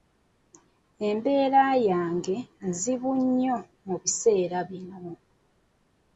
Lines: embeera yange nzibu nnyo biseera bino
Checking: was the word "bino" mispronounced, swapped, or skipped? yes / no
no